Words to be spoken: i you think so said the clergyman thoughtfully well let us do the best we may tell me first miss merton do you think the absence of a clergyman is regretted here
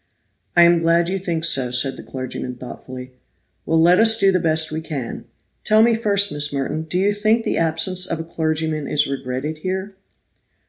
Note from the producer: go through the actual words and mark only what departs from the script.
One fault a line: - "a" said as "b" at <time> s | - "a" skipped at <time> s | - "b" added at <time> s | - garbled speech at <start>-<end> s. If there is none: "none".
- "am glad" added at 0.6 s
- "may" said as "can" at 4.8 s